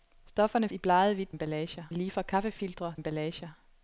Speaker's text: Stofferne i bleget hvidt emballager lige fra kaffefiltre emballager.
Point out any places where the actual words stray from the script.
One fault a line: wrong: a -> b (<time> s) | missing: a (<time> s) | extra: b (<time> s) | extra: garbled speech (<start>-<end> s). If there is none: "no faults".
no faults